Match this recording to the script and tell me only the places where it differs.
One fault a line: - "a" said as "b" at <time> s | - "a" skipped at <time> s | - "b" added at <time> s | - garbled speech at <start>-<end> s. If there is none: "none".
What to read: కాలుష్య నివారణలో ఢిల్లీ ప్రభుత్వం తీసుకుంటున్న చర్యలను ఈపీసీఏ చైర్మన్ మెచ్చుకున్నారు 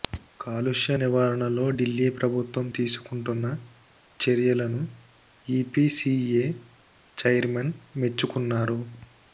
none